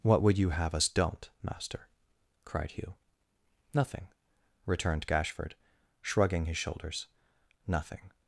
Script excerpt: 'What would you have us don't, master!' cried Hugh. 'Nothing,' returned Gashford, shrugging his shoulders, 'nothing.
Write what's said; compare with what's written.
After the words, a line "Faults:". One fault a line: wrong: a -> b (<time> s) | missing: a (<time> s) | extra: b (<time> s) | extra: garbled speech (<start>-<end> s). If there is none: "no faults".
'What would you have us don't, master!' cried Hugh. 'Nothing,' returned Gashford, shrugging his shoulders, 'nothing.
Faults:
no faults